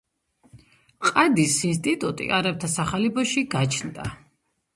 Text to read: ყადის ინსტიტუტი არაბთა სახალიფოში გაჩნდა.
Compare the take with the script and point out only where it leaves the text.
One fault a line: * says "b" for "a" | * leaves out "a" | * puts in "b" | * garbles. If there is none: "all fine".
all fine